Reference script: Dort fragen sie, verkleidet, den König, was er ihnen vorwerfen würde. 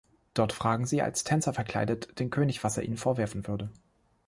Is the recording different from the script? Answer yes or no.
yes